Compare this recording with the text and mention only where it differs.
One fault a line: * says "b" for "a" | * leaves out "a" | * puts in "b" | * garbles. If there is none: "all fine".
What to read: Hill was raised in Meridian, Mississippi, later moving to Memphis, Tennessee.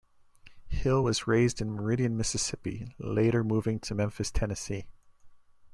all fine